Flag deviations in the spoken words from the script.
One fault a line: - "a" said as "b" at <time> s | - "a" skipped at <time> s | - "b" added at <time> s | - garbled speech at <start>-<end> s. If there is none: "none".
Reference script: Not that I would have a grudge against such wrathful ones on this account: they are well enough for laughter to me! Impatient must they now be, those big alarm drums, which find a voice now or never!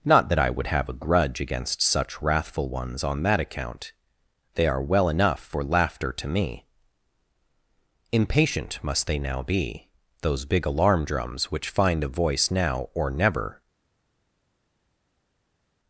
- "this" said as "that" at 3.2 s